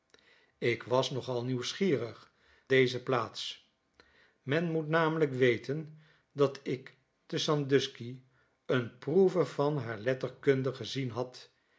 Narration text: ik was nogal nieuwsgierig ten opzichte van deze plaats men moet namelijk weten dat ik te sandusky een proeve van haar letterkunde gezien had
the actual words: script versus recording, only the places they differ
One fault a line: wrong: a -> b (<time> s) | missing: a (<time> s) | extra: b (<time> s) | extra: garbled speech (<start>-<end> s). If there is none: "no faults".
missing: ten opzichte van (2.3 s)